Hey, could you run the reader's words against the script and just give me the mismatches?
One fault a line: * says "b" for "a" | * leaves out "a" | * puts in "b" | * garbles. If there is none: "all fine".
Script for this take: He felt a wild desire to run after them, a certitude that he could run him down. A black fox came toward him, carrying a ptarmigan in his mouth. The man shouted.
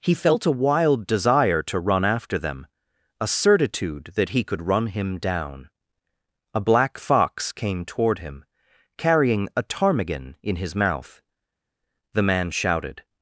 all fine